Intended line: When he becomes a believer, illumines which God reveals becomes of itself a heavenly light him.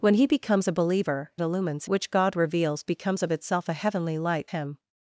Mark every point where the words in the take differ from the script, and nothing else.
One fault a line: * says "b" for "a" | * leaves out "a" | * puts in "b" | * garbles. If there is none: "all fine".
all fine